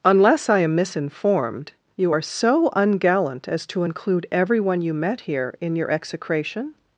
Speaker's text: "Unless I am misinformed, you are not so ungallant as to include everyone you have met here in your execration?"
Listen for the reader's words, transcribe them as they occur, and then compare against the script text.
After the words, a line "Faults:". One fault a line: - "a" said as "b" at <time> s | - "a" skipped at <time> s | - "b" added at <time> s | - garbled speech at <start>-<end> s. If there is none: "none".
"Unless I am misinformed, you are so ungallant as to include everyone you met here in your execration?"
Faults:
- "not" skipped at 2.2 s
- "have" skipped at 4.9 s